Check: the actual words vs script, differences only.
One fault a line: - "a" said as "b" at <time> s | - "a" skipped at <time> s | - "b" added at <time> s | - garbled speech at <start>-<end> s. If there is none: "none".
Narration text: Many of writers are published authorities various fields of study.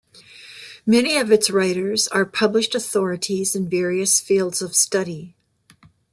- "its" added at 1.3 s
- "in" added at 3.5 s